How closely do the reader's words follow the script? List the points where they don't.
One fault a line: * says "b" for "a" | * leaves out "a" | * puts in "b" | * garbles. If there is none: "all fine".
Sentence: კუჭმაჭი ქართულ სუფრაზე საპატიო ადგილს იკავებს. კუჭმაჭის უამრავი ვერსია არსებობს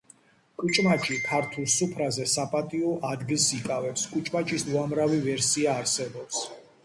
all fine